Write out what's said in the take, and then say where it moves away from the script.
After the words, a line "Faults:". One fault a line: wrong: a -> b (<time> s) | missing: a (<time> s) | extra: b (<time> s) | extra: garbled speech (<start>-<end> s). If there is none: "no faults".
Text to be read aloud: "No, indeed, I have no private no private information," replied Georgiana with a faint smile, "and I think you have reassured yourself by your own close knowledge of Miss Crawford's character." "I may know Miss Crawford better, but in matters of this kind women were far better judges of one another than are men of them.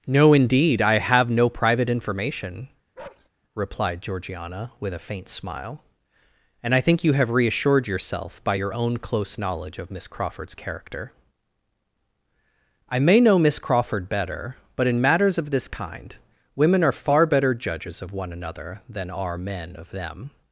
"No, indeed, I have no private information," replied Georgiana with a faint smile, "and I think you have reassured yourself by your own close knowledge of Miss Crawford's character." "I may know Miss Crawford better, but in matters of this kind women are far better judges of one another than are men of them.
Faults:
missing: no private (1.9 s)
wrong: were -> are (16.8 s)